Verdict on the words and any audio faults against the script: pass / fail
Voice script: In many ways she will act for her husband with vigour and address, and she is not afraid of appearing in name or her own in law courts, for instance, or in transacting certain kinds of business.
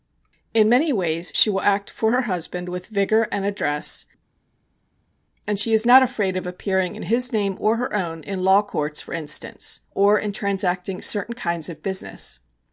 fail